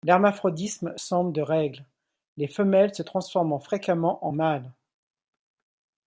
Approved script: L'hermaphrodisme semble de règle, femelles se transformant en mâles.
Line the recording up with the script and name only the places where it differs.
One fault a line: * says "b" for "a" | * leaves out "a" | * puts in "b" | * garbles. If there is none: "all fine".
* puts in "les"
* puts in "fréquemment"